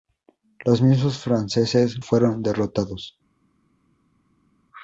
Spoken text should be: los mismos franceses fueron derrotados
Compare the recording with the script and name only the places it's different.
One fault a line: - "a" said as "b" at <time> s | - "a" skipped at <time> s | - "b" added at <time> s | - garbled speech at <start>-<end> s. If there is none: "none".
none